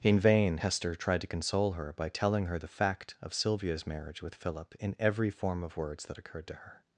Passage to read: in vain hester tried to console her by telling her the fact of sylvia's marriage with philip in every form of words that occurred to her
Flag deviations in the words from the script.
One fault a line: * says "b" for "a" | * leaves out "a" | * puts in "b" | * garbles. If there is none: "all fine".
all fine